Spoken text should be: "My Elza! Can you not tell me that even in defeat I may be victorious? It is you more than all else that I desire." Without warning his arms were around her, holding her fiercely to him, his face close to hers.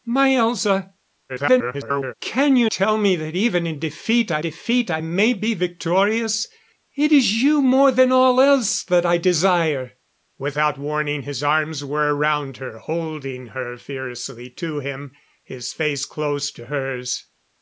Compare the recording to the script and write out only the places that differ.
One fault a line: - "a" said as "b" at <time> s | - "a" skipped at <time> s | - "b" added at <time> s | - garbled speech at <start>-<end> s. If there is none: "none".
- garbled speech at 1.3-2.1 s
- "not" skipped at 2.7 s
- "defeat I" added at 4.4 s